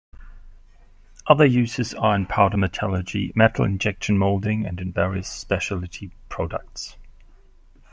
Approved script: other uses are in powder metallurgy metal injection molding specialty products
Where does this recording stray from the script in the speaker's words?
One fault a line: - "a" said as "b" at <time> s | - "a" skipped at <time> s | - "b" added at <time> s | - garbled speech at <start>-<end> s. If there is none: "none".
- "and in various" added at 4.6 s